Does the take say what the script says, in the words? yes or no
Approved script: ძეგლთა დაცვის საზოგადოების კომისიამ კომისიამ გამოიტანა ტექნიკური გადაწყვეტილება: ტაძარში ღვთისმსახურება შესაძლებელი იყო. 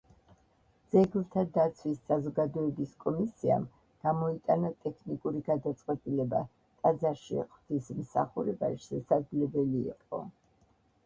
no